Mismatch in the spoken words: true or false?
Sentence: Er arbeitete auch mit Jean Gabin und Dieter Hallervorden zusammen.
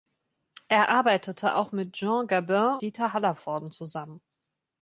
true